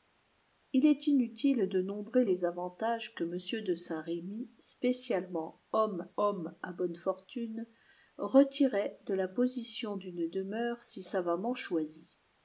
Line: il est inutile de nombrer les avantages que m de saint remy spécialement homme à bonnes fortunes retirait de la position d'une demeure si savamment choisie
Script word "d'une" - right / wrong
right